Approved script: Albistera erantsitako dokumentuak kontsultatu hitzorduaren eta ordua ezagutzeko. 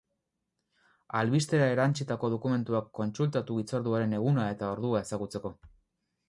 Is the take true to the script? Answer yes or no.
no